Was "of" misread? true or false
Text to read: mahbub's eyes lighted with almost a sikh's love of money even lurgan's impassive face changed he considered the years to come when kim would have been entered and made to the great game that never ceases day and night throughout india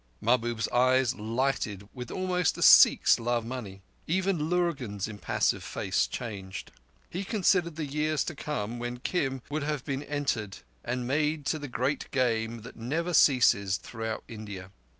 true